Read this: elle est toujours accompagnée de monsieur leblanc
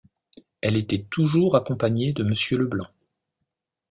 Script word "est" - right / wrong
wrong